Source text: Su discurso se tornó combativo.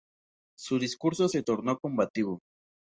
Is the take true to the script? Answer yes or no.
yes